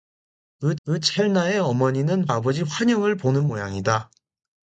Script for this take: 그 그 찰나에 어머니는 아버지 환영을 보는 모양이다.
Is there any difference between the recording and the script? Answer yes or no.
no